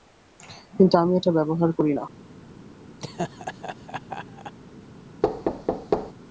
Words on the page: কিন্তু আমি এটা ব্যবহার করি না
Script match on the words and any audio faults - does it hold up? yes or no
no